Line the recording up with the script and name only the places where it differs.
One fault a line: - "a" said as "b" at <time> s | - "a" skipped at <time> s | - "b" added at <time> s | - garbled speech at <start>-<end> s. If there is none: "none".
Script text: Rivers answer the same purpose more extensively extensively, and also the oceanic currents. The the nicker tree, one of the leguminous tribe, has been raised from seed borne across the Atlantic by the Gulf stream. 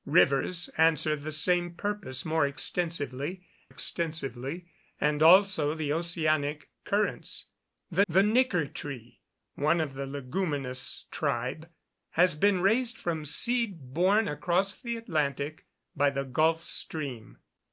none